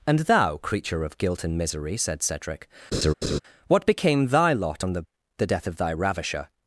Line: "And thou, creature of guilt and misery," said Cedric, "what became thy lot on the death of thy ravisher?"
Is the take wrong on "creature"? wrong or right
right